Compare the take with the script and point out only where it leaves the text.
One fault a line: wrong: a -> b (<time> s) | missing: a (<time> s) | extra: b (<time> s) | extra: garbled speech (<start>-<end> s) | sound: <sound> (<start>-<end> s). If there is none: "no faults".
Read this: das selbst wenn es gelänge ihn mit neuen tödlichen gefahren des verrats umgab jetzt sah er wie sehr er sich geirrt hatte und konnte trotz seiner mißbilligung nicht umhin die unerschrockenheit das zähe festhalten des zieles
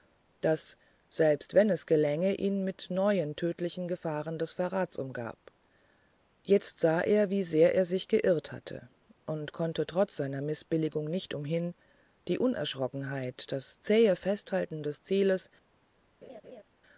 sound: laugh (16.2-16.6 s)